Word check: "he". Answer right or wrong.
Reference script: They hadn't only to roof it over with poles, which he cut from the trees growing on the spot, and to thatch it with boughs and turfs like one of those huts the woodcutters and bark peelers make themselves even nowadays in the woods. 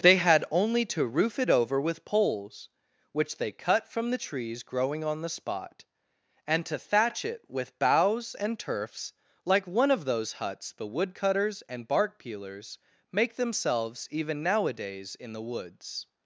wrong